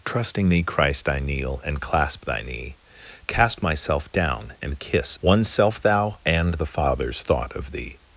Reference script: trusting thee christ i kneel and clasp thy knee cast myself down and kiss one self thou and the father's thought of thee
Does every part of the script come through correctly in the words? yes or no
yes